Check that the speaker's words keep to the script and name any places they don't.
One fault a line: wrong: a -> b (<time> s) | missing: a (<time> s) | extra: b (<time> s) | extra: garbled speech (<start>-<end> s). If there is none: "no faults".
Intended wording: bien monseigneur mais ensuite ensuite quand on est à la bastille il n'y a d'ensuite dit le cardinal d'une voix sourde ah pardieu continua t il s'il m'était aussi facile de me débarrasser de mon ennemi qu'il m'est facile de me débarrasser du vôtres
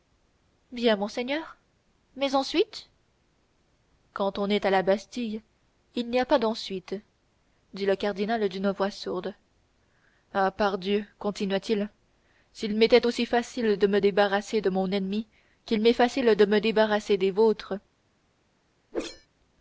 missing: ensuite (2.9 s)
extra: pas (6.2 s)
wrong: du -> des (17.2 s)